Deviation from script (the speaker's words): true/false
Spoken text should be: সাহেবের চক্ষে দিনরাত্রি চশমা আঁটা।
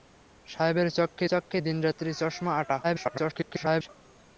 true